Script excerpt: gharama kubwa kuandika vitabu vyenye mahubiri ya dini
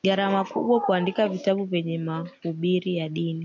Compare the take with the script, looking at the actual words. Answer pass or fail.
pass